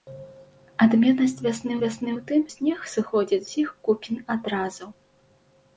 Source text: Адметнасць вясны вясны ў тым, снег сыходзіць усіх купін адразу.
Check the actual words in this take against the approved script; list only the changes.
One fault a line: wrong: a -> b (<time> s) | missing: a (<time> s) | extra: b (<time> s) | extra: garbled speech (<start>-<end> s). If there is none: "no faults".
no faults